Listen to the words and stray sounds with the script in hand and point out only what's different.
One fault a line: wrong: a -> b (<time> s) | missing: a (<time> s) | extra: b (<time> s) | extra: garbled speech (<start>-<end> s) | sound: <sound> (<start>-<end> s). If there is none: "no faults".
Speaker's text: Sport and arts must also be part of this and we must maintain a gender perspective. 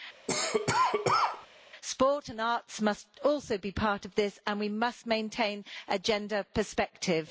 sound: cough (0.3-1.5 s)